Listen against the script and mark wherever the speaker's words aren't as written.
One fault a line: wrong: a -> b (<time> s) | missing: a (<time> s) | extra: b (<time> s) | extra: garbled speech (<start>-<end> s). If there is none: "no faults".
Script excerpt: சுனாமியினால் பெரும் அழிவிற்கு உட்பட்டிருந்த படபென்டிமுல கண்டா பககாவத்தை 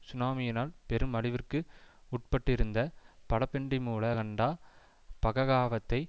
no faults